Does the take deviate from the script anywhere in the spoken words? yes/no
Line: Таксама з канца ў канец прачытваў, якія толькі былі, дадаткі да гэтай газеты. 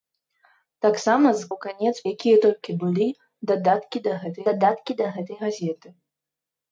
yes